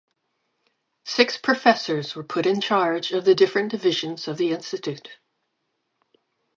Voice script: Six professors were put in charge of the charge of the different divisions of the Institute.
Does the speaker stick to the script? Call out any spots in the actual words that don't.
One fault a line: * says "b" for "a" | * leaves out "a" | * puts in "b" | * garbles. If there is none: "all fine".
* leaves out "charge of the"